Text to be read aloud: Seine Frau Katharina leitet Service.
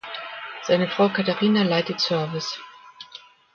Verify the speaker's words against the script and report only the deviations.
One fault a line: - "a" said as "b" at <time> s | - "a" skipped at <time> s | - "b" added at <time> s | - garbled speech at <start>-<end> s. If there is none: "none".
none